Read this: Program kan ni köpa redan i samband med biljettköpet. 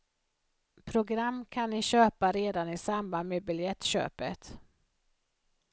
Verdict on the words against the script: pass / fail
pass